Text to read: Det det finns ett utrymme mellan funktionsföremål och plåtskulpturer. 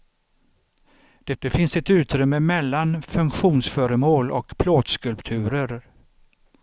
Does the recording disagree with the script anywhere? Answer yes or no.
no